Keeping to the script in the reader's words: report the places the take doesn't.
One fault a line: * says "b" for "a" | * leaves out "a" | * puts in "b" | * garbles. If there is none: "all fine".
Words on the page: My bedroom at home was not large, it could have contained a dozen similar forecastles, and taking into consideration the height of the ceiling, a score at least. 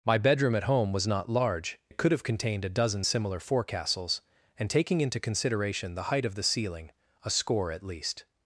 all fine